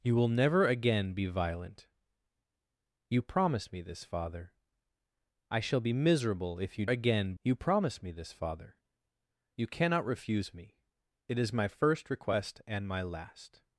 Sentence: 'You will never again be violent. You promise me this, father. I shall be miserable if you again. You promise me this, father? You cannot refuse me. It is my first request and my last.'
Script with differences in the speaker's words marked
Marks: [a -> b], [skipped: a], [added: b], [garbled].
'You will never again be violent. You promise me this, father. I shall be miserable if you again. You promise me this, father? You cannot refuse me. It is my first request and my last.'